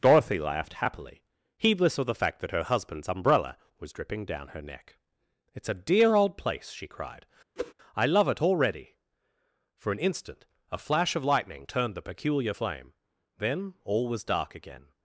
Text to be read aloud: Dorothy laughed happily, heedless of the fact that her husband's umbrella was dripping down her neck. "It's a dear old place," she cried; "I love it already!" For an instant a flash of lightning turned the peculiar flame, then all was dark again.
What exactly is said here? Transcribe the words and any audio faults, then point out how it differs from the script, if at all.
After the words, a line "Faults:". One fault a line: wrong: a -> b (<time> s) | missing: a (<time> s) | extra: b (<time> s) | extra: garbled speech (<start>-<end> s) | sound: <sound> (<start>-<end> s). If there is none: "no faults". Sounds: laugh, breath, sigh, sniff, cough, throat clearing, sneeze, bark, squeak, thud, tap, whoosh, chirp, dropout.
Dorothy laughed happily, heedless of the fact that her husband's umbrella was dripping down her neck. "It's a dear old place," she cried; "I love it already!" For an instant a flash of lightning turned the peculiar flame, then all was dark again.
Faults:
sound: whoosh (7.6-7.7 s)